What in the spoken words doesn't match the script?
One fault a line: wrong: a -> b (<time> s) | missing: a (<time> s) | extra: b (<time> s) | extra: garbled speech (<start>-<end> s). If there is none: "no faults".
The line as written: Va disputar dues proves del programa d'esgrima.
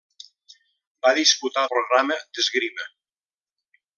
missing: dues proves del (1.7 s)